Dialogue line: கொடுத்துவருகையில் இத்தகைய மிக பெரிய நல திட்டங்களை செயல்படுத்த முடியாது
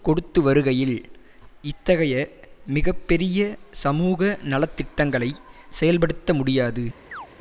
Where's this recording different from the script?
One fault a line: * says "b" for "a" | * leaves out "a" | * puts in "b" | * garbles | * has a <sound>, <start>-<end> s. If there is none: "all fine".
* puts in "சமூக"
* has a chirp, 7.1-7.3 s